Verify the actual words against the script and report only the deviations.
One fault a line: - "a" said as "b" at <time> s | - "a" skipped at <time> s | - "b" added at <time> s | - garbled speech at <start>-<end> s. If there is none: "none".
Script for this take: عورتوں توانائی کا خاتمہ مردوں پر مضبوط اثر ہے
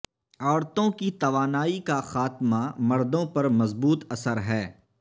- "کی" added at 0.9 s